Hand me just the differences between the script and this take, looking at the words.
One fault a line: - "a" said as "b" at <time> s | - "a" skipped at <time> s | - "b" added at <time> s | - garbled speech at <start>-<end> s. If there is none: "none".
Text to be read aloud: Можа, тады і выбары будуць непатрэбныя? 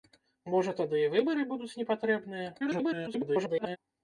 - garbled speech at 2.6-3.8 s